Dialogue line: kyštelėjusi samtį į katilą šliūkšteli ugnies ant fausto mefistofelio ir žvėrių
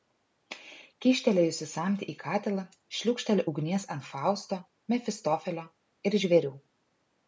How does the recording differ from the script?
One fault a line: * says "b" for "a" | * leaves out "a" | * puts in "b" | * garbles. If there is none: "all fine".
all fine